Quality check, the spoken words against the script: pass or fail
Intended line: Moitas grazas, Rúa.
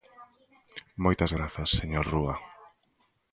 fail